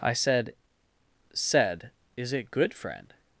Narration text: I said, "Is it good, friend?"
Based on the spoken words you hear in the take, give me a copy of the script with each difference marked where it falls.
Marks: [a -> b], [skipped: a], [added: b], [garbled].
I said, [added: said] "Is it good, friend?"